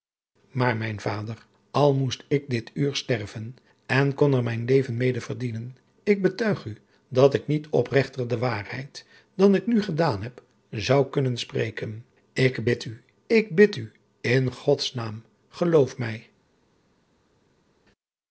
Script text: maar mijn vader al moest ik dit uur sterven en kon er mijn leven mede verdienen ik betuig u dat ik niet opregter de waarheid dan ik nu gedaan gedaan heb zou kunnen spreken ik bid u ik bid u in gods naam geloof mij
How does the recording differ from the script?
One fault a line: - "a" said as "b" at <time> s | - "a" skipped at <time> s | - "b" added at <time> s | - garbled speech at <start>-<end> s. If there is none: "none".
- "gedaan" skipped at 10.2 s